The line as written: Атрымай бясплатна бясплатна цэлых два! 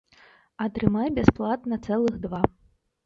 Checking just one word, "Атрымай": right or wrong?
right